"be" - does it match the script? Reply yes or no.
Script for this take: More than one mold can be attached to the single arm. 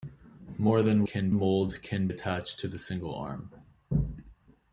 no